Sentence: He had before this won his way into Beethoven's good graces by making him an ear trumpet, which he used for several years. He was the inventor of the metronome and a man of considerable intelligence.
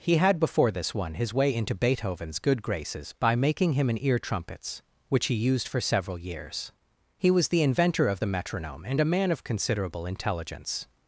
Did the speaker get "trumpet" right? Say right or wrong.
wrong